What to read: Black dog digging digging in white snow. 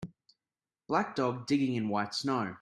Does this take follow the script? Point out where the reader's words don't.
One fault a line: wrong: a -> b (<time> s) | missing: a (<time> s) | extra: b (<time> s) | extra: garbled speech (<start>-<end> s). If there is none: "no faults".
missing: digging (1.8 s)